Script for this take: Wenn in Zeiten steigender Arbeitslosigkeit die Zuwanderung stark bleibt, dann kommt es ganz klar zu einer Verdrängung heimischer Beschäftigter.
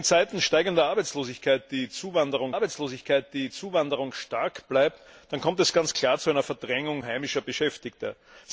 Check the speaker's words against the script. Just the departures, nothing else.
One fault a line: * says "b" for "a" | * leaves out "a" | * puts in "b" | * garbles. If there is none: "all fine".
* puts in "Arbeitslosigkeit die Zuwanderung"